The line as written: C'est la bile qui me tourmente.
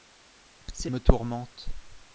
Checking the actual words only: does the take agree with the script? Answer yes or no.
no